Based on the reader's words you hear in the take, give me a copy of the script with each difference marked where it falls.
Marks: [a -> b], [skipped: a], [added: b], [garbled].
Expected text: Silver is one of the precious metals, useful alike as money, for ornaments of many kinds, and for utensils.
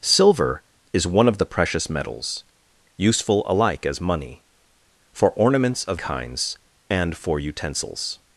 Silver is one of the precious metals, useful alike as money, for ornaments of [skipped: many] kinds, and for utensils.